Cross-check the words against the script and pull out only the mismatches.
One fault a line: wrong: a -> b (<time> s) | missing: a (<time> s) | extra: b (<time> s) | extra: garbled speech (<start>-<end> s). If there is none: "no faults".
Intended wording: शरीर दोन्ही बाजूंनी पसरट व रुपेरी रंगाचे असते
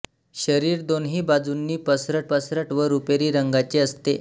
extra: पसरट (2.3 s)